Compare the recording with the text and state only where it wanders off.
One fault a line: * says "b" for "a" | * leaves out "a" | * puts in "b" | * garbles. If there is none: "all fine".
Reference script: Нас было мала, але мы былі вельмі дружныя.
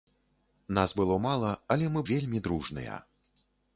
* leaves out "былі"